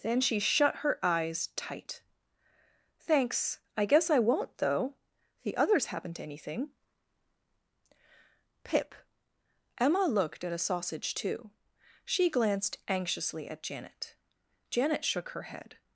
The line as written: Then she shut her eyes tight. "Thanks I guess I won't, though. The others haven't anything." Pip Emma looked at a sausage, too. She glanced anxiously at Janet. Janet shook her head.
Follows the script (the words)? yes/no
yes